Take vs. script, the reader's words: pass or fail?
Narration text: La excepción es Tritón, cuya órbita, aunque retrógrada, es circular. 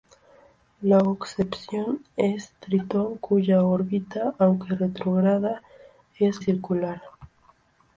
pass